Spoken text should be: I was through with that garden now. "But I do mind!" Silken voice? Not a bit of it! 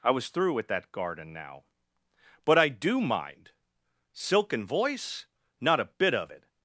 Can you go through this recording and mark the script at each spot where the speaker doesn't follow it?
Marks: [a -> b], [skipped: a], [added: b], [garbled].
I was through with that garden now. "But I do mind!" Silken voice? Not a bit of it!